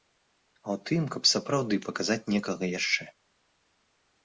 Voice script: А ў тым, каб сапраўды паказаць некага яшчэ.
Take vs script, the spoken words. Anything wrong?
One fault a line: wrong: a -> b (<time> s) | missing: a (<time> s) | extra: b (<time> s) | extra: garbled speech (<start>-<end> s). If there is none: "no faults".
no faults